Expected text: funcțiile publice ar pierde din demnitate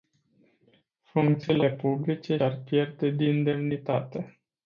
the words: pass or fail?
pass